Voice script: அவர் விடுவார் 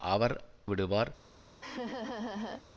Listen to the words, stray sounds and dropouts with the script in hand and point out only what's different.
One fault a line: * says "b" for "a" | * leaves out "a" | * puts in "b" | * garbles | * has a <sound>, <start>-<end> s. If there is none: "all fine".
* has a laugh, 1.6-2.6 s